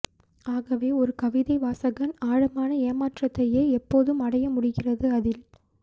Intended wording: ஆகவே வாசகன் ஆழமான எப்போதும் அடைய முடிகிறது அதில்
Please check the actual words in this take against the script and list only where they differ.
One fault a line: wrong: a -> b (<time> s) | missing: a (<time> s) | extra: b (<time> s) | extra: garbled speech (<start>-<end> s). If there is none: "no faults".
extra: ஒரு கவிதை (0.9 s)
extra: ஏமாற்றத்தையே (2.9 s)